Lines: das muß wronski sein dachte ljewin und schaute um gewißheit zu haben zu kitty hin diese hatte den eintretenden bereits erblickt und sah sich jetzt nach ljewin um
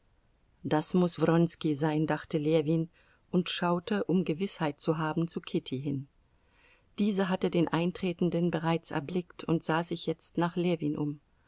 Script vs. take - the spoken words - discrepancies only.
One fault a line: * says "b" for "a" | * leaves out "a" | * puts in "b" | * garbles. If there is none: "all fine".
all fine